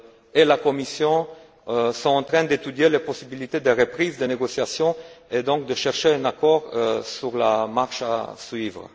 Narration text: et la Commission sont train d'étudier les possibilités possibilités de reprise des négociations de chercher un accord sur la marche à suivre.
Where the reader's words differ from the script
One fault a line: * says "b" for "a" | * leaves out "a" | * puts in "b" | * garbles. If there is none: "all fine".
* puts in "en"
* leaves out "possibilités"
* puts in "et donc"